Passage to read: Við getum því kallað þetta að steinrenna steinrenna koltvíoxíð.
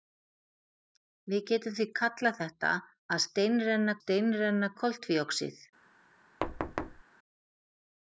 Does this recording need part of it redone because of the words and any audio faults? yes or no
yes